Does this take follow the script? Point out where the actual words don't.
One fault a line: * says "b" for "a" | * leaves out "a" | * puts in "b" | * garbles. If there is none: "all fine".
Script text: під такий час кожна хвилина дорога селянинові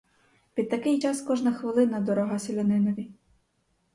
all fine